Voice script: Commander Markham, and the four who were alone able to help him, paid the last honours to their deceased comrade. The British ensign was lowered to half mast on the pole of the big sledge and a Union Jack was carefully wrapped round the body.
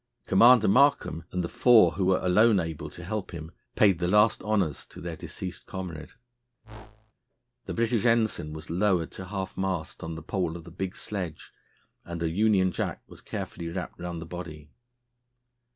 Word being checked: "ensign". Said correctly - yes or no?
yes